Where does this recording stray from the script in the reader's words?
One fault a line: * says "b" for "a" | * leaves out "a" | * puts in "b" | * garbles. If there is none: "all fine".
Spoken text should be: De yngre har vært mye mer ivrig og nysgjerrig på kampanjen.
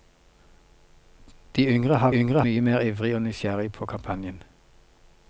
* says "yngre" for "vært"